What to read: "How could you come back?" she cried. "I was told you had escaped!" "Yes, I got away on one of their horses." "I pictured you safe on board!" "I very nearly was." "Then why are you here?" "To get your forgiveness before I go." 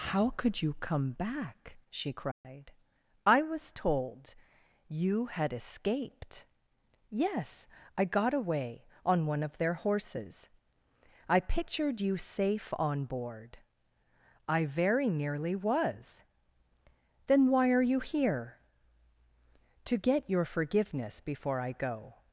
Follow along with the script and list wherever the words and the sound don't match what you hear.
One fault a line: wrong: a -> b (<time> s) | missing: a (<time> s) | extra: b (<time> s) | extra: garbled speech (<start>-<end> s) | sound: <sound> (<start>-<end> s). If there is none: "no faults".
sound: dropout (2.3-2.4 s)